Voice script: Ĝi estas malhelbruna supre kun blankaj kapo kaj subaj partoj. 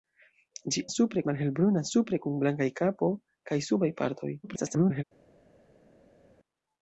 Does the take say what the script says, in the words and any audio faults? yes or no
no